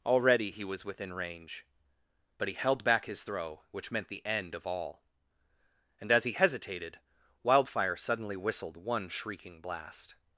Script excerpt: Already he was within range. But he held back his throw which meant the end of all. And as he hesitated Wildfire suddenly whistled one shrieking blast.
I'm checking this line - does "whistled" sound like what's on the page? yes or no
yes